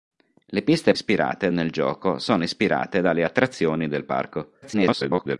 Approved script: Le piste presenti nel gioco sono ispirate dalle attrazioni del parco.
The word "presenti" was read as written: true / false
false